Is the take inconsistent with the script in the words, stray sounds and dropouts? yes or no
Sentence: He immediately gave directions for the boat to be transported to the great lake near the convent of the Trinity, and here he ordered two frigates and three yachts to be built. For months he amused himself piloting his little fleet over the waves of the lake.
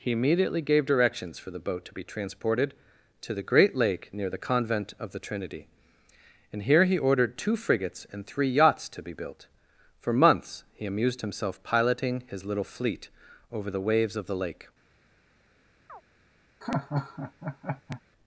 yes